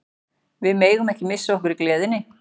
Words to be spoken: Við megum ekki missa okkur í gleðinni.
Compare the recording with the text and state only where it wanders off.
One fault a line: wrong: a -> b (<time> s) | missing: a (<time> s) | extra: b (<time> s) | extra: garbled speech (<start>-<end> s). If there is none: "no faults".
no faults